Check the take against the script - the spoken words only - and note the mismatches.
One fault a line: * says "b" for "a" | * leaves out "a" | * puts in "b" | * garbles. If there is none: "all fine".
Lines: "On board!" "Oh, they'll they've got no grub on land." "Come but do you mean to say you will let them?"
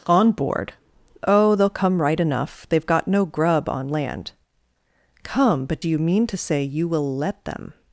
* puts in "come right enough"